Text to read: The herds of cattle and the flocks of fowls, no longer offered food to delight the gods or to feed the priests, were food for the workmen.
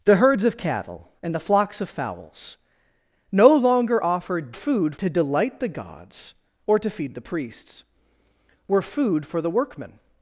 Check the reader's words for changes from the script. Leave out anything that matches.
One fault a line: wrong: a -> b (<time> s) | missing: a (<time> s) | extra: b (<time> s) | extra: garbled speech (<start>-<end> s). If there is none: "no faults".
no faults